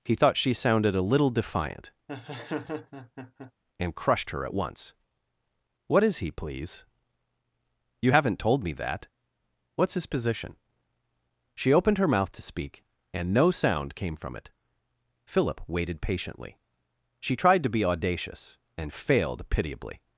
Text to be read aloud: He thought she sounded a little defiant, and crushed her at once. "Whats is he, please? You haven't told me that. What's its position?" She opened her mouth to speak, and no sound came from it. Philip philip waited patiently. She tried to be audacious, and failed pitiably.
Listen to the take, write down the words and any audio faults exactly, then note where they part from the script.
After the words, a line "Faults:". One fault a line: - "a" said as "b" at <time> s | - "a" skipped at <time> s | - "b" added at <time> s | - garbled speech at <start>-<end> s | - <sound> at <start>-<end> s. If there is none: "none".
He thought she sounded a little defiant, and crushed her at once. "What is he, please? You haven't told me that. What's his position?" She opened her mouth to speak, and no sound came from it. Philip waited patiently. She tried to be audacious, and failed pitiably.
Faults:
- laugh at 2.1-3.5 s
- "Whats" said as "What" at 5.9 s
- "its" said as "his" at 9.9 s
- "philip" skipped at 15.6 s